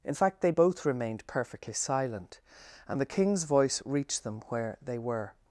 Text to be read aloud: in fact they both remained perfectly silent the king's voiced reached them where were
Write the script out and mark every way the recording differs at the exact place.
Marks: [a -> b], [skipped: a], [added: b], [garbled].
in fact they both remained perfectly silent [added: and] the king's [voiced -> voice] reached them where [added: they] were